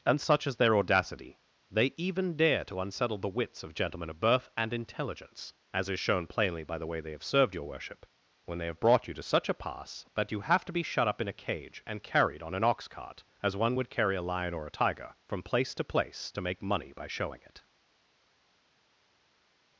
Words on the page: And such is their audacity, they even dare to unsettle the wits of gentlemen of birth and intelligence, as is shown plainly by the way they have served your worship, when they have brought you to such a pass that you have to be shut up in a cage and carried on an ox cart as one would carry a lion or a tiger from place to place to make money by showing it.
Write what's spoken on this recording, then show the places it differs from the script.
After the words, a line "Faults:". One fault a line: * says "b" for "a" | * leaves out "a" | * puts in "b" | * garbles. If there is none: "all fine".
And such is their audacity, they even dare to unsettle the wits of gentlemen of birth and intelligence, as is shown plainly by the way they have served your worship, when they have brought you to such a pass that you have to be shut up in a cage and carried on an ox cart as one would carry a lion or a tiger from place to place to make money by showing it.
Faults:
all fine